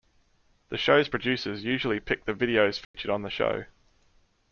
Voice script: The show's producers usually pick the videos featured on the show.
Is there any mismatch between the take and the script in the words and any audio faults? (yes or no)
yes